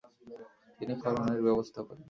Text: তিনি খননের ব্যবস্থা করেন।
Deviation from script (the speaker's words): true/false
false